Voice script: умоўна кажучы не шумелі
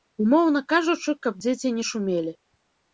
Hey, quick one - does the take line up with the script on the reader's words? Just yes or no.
no